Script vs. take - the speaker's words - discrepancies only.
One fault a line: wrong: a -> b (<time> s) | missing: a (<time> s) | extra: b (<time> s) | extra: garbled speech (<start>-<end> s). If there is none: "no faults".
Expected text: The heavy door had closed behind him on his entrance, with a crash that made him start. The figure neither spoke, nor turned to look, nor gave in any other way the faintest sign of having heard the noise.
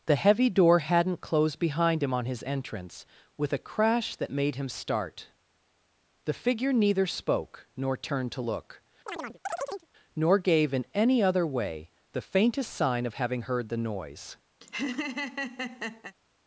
wrong: had -> hadn't (0.8 s)